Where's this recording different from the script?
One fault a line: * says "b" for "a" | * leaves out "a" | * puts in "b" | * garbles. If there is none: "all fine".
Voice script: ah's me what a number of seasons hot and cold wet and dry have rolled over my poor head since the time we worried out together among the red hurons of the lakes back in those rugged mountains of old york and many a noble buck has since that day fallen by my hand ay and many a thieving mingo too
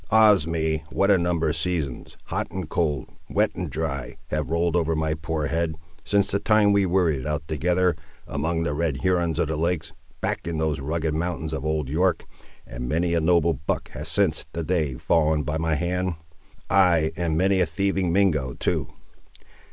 all fine